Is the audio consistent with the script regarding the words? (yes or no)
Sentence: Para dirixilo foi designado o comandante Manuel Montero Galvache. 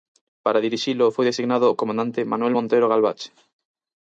yes